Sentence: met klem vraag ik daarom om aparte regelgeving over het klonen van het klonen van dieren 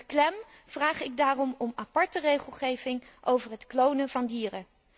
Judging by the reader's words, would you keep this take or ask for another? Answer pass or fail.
fail